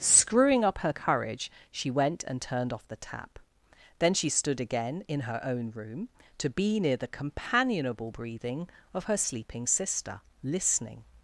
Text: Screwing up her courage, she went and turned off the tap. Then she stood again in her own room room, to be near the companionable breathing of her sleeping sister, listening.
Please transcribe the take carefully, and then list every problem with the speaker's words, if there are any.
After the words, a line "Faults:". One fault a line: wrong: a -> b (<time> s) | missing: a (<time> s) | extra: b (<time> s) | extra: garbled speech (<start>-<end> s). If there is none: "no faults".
Screwing up her courage, she went and turned off the tap. Then she stood again in her own room, to be near the companionable breathing of her sleeping sister, listening.
Faults:
missing: room (6.1 s)